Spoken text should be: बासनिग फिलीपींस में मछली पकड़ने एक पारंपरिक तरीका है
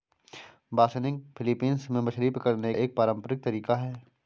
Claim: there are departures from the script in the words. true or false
false